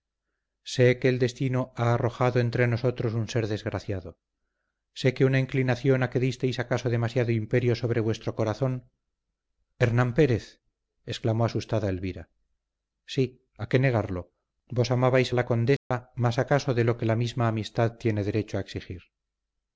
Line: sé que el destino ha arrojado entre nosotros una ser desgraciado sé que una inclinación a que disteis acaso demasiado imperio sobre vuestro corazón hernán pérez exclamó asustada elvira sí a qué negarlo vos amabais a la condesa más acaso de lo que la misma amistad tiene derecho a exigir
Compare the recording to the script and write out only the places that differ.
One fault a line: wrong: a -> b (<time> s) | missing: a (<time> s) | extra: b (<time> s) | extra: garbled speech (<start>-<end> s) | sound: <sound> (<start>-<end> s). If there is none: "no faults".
wrong: una -> un (3.1 s)
sound: dropout (15.8-15.9 s)